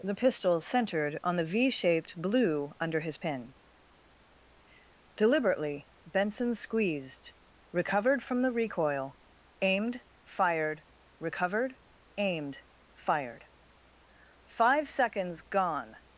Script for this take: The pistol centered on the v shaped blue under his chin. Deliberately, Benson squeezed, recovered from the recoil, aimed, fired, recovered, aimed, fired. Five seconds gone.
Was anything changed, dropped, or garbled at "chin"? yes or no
yes